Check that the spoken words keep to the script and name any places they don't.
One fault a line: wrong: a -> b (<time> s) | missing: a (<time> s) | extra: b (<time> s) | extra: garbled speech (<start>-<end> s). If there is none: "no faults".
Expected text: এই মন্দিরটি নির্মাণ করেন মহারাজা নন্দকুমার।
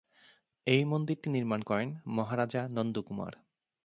no faults